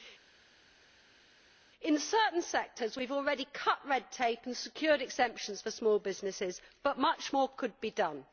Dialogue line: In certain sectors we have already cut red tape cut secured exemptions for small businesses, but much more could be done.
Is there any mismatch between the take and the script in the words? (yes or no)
yes